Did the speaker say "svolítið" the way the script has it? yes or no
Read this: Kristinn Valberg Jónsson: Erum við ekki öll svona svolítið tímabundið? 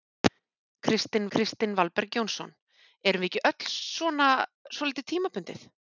yes